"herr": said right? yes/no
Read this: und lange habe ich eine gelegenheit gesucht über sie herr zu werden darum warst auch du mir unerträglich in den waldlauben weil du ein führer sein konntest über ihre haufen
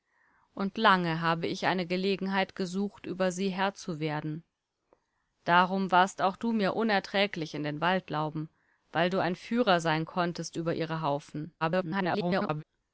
yes